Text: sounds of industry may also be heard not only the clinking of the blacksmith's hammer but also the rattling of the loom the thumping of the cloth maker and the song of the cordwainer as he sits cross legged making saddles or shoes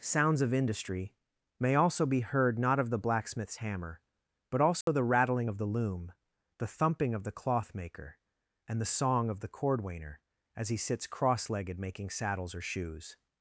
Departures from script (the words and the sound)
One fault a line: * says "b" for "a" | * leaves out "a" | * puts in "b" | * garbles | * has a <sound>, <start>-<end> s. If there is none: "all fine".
* leaves out "only the clinking"
* has a dropout, 4.8-4.9 s